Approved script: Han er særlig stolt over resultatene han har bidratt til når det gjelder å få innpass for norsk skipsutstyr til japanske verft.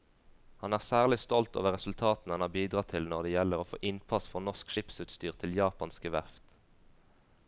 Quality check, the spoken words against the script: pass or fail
pass